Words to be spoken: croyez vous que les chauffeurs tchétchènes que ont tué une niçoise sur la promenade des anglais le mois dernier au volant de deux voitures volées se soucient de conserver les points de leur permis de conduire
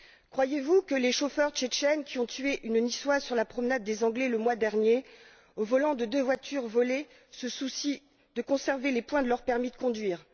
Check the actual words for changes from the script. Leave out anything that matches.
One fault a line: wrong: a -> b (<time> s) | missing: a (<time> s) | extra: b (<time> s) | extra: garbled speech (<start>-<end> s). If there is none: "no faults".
wrong: que -> qui (2.0 s)